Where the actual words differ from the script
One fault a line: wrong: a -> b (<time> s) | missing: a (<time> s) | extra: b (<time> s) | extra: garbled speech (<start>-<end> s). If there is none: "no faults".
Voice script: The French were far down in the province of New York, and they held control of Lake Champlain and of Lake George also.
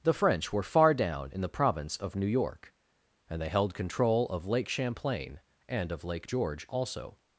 no faults